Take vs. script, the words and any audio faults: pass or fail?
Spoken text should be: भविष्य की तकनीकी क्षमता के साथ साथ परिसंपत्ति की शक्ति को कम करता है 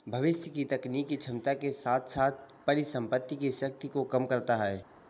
pass